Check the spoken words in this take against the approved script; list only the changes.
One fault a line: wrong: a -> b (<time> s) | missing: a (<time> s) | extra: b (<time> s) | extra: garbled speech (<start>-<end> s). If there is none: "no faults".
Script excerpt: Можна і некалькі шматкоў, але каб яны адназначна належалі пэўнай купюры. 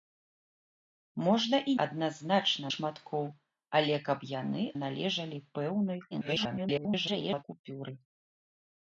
wrong: некалькі -> адназначна (1.9 s)
missing: адназначна (4.6 s)
extra: garbled speech (6.1-7.4 s)